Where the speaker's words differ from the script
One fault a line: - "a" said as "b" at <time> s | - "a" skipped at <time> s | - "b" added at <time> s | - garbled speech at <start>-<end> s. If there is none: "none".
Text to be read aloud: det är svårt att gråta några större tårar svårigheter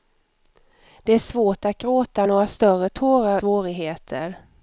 none